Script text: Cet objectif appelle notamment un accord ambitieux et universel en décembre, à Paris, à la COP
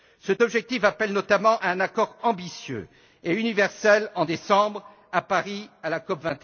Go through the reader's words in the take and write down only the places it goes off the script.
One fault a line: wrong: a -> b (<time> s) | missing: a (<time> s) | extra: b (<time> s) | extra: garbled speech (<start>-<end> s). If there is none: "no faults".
no faults